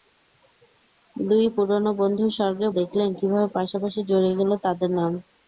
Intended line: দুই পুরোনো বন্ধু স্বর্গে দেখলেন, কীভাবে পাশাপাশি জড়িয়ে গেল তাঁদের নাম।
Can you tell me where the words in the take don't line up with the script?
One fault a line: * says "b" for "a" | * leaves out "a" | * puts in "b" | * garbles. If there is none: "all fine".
all fine